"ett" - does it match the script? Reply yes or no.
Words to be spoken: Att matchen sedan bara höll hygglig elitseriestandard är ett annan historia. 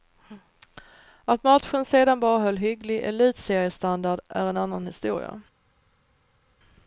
no